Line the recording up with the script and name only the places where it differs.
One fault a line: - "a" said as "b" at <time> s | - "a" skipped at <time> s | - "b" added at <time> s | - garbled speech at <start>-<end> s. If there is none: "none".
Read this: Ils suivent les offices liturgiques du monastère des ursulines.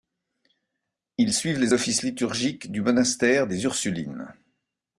none